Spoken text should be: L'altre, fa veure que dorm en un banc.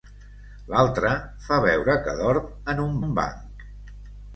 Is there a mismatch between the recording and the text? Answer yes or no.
yes